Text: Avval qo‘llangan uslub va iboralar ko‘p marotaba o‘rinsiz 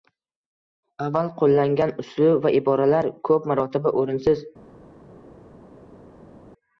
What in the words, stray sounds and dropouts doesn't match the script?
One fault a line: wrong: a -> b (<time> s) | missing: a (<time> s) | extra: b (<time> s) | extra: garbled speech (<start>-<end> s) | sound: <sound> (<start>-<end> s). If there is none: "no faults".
no faults